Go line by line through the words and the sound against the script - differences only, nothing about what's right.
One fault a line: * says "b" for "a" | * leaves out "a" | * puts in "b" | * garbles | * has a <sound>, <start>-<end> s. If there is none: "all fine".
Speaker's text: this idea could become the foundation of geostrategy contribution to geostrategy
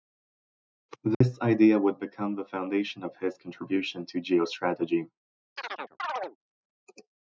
* has a dropout, 1.1-1.2 s
* says "would" for "could"
* says "his" for "geostrategy"
* has a chirp, 5.6-6.4 s